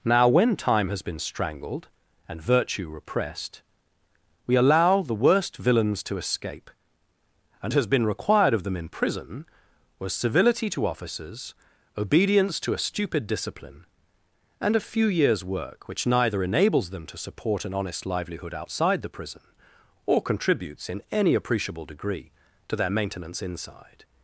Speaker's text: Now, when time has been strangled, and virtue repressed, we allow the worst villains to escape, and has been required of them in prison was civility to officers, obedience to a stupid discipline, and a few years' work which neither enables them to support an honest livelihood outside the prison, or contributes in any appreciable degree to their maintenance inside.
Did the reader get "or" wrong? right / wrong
right